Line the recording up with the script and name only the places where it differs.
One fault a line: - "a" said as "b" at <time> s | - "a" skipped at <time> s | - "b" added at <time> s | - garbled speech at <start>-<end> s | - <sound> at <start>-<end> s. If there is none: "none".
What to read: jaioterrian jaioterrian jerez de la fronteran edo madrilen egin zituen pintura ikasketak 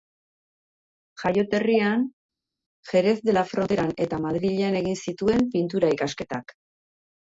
- "jaioterrian" skipped at 2.0 s
- "edo" said as "eta" at 4.1 s